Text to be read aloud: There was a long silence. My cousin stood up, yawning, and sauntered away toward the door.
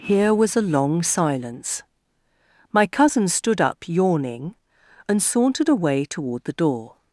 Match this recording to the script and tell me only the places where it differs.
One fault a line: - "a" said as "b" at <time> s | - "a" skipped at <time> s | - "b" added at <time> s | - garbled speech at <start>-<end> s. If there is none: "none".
- "There" said as "Here" at 0.0 s